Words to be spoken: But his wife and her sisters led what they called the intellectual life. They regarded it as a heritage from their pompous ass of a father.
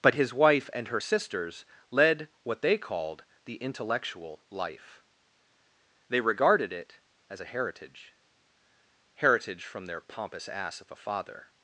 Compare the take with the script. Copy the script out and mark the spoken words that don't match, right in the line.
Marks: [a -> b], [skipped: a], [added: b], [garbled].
But his wife and her sisters led what they called the intellectual life. They regarded it as a heritage [added: heritage] from their pompous ass of a father.